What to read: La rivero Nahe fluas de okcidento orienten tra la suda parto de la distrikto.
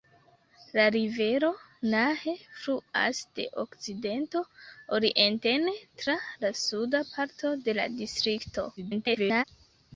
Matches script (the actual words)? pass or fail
fail